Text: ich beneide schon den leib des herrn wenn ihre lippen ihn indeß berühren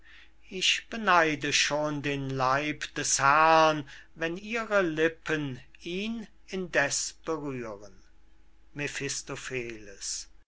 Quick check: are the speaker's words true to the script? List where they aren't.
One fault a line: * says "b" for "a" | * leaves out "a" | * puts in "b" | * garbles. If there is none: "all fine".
all fine